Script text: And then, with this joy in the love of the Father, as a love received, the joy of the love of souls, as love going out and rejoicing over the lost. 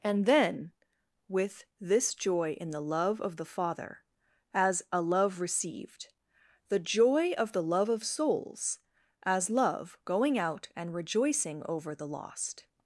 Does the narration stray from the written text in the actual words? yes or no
no